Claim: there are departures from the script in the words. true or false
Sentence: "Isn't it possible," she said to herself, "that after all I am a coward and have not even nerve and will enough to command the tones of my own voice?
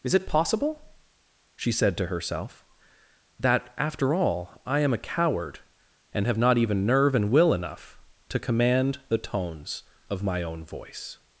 true